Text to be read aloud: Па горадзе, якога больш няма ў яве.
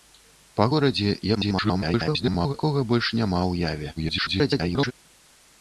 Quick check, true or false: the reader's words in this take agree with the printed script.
false